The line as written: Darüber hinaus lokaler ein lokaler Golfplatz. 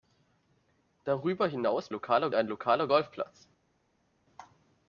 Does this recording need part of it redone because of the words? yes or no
no